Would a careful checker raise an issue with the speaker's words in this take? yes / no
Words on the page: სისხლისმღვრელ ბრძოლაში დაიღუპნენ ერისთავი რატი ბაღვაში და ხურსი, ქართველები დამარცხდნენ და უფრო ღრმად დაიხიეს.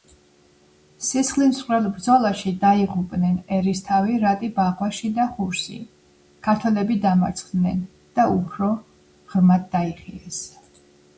no